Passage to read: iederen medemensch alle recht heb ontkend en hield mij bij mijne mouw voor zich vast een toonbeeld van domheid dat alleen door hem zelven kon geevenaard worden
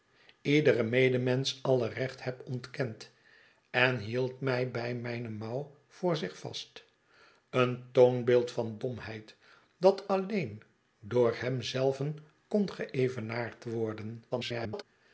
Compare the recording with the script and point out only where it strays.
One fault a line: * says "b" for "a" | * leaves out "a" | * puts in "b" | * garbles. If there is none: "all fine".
* garbles